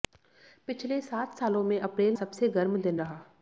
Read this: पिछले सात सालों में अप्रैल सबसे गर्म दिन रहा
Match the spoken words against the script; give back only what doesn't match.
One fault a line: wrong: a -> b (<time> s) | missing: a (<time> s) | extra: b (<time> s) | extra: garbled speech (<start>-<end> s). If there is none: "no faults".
no faults